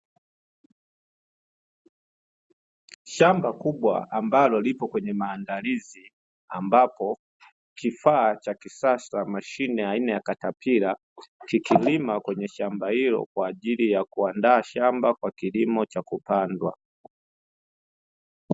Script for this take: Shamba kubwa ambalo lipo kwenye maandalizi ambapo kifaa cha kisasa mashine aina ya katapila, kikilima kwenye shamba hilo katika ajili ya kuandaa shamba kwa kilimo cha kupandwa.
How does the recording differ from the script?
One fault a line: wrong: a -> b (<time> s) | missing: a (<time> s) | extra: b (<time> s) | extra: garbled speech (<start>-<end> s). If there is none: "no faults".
wrong: katika -> kwa (13.3 s)